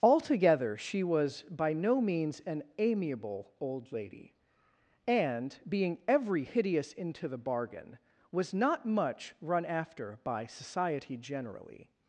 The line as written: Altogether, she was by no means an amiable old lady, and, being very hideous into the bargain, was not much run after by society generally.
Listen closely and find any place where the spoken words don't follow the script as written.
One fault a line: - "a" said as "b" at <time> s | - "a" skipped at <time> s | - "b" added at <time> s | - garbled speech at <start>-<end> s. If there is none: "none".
- "very" said as "every" at 6.1 s